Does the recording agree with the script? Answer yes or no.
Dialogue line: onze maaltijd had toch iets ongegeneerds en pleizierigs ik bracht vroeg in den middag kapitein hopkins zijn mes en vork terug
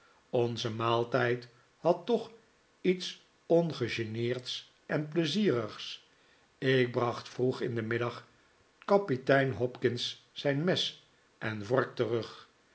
yes